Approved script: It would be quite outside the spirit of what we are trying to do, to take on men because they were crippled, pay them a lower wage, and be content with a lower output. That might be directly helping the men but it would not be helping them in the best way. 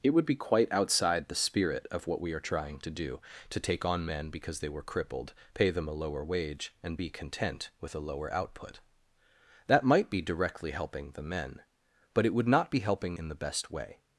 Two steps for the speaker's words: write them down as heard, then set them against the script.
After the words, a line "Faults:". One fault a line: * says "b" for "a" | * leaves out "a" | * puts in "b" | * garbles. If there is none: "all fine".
It would be quite outside the spirit of what we are trying to do, to take on men because they were crippled, pay them a lower wage, and be content with a lower output. That might be directly helping the men but it would not be helping in the best way.
Faults:
* leaves out "them"